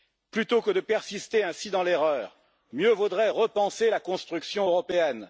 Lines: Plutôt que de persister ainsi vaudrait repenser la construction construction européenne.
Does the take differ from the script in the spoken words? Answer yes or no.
yes